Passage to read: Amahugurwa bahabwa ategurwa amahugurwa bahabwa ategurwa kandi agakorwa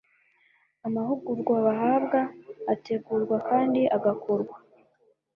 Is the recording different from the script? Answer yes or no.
yes